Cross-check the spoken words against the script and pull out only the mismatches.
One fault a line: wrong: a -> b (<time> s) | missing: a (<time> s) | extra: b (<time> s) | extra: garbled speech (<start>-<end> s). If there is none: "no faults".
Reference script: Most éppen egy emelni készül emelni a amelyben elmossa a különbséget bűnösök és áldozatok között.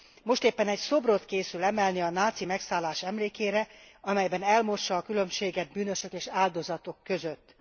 wrong: emelni -> szobrot (0.8 s)
extra: náci megszállás emlékére (2.1 s)